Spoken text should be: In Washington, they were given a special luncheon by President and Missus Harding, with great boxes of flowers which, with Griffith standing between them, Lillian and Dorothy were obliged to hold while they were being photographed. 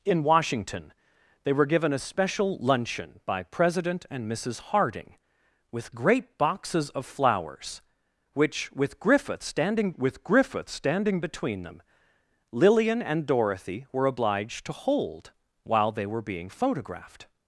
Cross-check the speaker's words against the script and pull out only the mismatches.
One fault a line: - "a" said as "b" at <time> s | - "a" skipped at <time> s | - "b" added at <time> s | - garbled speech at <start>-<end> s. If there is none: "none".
- "with Griffith standing" added at 9.9 s